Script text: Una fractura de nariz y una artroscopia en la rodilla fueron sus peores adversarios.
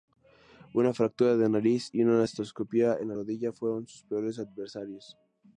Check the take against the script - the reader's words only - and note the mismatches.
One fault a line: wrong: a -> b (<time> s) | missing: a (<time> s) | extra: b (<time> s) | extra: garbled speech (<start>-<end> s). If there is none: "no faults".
no faults